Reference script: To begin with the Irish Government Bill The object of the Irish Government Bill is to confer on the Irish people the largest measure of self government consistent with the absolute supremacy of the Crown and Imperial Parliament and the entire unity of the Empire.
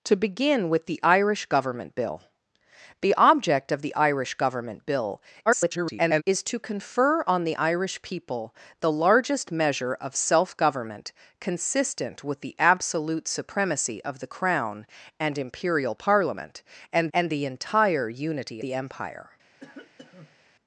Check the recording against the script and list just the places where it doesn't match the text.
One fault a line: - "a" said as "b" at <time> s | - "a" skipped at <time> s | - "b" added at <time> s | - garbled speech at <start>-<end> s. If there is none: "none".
- garbled speech at 5.5-6.2 s
- "and" added at 17.1 s
- "of" skipped at 18.6 s